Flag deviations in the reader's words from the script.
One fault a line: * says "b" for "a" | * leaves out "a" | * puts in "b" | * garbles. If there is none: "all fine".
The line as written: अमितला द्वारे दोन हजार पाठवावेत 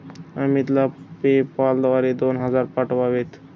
* puts in "पेपाल"